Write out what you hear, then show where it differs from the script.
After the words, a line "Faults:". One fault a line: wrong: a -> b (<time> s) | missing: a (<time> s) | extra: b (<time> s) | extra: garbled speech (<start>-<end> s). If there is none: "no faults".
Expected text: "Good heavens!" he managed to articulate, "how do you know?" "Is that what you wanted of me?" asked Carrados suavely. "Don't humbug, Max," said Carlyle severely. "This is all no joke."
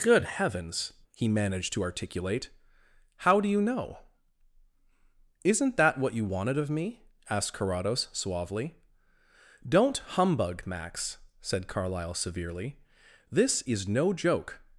"Good heavens!" he managed to articulate, "how do you know?" "Isn't that what you wanted of me?" asked Carrados suavely. "Don't humbug, Max," said Carlyle severely. "This is no joke."
Faults:
wrong: Is -> Isn't (5.4 s)
missing: all (13.9 s)